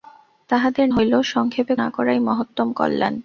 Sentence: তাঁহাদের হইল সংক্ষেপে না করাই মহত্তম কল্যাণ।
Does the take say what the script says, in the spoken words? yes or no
yes